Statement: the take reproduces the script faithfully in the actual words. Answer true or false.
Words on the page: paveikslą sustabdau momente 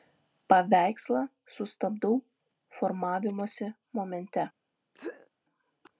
false